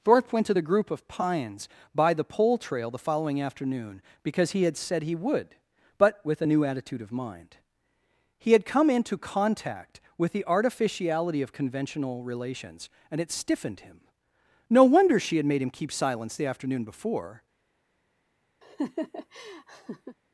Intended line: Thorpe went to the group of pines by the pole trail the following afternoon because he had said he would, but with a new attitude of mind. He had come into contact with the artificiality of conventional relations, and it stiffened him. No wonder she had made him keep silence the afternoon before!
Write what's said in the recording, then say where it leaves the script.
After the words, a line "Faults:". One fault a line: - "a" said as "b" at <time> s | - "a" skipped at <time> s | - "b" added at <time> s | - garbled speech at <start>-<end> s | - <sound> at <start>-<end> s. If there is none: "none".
Thorpe went to the group of pines by the pole trail the following afternoon because he had said he would, but with a new attitude of mind. He had come into contact with the artificiality of conventional relations, and it stiffened him. No wonder she had made him keep silence the afternoon before!
Faults:
- laugh at 18.6-20.2 s